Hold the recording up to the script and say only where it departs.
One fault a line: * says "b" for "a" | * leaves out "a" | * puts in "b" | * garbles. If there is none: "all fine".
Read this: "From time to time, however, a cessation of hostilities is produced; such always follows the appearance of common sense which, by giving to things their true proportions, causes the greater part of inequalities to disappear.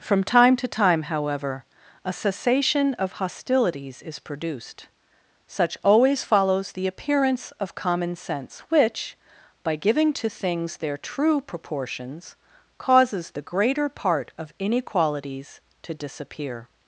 all fine